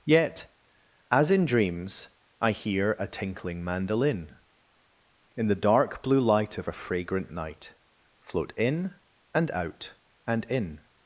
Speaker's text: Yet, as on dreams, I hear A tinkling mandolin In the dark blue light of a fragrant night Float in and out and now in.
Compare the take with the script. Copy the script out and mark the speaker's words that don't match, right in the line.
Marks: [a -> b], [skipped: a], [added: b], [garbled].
Yet, as [on -> in] dreams, I hear A tinkling mandolin In the dark blue light of a fragrant night Float in and out and [skipped: now] in.